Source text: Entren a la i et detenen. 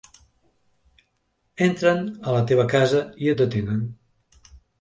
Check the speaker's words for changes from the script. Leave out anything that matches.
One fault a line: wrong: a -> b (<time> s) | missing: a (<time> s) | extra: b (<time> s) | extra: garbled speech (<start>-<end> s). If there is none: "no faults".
extra: teva casa (2.5 s)